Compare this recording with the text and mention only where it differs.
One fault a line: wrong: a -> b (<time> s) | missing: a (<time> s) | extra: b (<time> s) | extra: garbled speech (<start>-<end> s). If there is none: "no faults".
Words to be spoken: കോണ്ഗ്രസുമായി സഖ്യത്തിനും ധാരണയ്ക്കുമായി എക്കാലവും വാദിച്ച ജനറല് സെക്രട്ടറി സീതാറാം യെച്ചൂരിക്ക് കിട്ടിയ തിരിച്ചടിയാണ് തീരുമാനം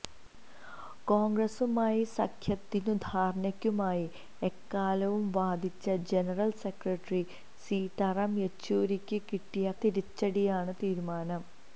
no faults